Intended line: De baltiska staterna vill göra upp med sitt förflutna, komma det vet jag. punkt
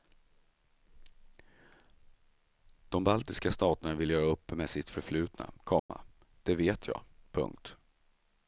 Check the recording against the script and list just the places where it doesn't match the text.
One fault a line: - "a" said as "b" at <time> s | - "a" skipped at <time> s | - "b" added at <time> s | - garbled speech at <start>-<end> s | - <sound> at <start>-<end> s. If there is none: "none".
- dropout at 5.8-5.9 s